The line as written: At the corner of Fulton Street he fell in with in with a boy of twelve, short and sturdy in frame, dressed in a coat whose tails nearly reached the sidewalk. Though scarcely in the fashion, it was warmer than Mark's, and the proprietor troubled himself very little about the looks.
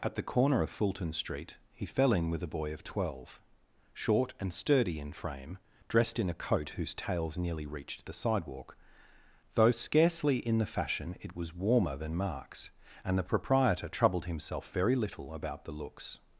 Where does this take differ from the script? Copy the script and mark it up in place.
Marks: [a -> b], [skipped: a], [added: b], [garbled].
At the corner of Fulton Street he fell in with [skipped: in with] a boy of twelve, short and sturdy in frame, dressed in a coat whose tails nearly reached the sidewalk. Though scarcely in the fashion, it was warmer than Mark's, and the proprietor troubled himself very little about the looks.